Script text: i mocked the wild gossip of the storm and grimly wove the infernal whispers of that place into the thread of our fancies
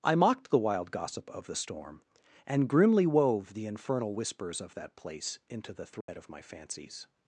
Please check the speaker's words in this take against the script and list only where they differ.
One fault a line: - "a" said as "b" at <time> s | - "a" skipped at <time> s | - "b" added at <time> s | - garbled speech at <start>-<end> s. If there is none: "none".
- "our" said as "my" at 6.3 s